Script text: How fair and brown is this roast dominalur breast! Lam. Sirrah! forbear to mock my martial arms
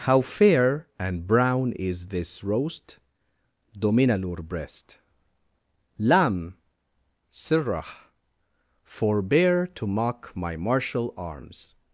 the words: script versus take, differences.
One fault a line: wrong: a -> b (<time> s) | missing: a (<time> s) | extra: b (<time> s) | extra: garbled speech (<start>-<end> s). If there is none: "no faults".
no faults